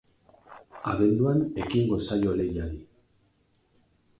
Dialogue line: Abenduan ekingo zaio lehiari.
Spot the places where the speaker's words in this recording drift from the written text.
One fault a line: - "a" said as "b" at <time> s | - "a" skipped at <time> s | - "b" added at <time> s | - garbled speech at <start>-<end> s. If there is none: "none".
none